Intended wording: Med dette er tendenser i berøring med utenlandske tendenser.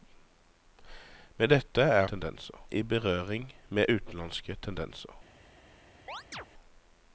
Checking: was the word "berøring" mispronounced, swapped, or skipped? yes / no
no